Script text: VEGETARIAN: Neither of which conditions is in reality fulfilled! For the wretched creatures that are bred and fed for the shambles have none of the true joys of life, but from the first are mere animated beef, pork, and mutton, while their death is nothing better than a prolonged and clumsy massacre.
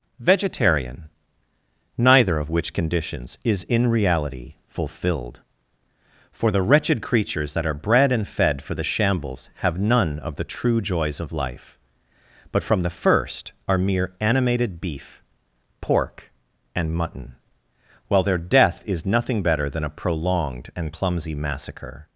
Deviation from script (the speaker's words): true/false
false